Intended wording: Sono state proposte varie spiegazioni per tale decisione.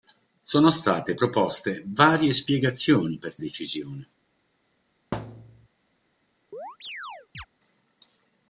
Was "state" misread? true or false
false